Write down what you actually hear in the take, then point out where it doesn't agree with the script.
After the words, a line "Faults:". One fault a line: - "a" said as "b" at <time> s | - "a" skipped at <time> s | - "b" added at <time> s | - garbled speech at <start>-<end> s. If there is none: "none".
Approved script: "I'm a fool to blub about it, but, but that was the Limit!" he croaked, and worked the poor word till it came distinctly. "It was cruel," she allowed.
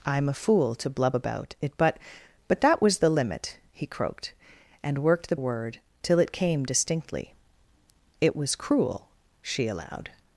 "I'm a fool to blub about it, but, but that was the Limit!" he croaked, and worked the word till it came distinctly. "It was cruel," she allowed.
Faults:
- "poor" skipped at 5.3 s